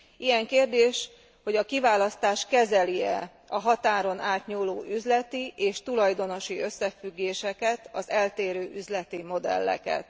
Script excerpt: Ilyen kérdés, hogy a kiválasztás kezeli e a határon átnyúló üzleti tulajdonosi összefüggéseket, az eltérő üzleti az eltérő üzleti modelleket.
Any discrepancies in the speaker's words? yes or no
yes